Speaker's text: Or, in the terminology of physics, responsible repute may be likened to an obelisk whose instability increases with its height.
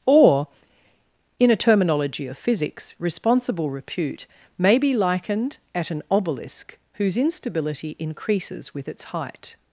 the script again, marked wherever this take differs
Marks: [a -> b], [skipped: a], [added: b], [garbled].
Or, in [the -> a] terminology of physics, responsible repute may be likened [to -> at] an obelisk whose instability increases with its height.